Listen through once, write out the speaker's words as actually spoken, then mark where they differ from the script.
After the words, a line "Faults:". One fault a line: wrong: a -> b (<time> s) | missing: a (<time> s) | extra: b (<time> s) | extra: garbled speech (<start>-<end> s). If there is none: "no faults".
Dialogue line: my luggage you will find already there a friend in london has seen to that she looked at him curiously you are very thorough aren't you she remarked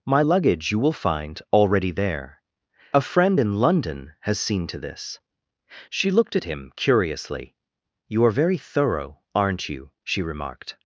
my luggage you will find already there a friend in london has seen to this she looked at him curiously you are very thorough aren't you she remarked
Faults:
wrong: that -> this (4.8 s)